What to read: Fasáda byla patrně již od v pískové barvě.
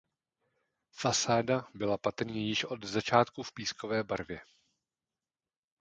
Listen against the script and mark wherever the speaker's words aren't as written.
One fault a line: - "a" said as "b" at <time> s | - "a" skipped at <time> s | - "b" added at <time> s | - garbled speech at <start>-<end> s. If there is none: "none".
- "začátku" added at 2.8 s